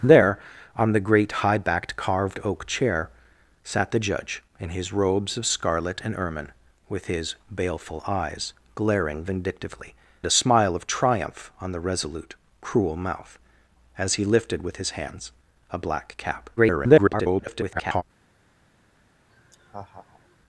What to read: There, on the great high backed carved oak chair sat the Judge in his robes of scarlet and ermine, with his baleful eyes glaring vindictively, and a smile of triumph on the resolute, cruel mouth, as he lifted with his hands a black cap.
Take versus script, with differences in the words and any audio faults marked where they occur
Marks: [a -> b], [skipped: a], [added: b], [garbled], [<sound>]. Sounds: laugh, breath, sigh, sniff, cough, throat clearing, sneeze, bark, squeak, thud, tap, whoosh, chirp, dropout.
There, on the great high backed carved oak chair sat the Judge in his robes of scarlet and ermine, with his baleful eyes glaring vindictively, [skipped: and] a smile of triumph on the resolute, cruel mouth, as he lifted with his hands a black cap. [garbled] [laugh]